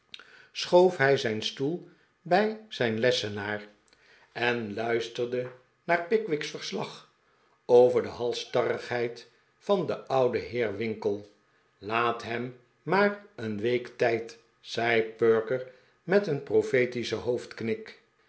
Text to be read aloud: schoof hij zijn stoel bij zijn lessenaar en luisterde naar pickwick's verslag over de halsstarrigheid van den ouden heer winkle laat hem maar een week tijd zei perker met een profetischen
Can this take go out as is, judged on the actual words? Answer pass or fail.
pass